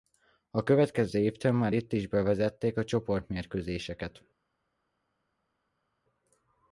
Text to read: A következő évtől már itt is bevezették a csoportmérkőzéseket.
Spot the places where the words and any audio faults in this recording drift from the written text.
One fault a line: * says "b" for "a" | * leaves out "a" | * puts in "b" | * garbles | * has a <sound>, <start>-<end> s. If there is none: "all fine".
all fine